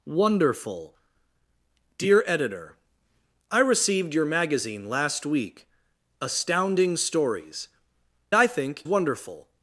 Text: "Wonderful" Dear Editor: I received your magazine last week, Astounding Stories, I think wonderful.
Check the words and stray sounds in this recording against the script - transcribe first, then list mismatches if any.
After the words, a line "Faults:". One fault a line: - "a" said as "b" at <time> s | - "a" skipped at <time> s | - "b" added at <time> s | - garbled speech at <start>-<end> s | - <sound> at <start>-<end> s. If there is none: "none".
"Wonderful" Dear Editor: I received your magazine last week, Astounding Stories, I think wonderful.
Faults:
none